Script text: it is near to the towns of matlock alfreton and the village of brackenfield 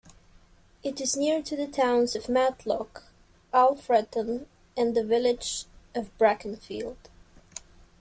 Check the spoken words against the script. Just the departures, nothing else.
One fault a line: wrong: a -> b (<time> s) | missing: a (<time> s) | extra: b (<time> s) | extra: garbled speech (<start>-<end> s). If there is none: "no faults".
no faults